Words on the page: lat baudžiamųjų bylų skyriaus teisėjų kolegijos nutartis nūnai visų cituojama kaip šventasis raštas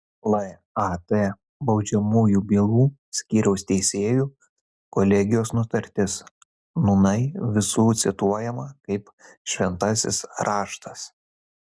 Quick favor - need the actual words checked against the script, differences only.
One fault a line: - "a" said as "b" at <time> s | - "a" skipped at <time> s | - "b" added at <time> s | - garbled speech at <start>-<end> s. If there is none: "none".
none